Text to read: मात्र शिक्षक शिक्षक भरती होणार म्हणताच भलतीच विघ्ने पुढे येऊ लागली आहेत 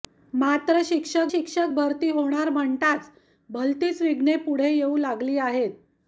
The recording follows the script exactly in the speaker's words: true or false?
true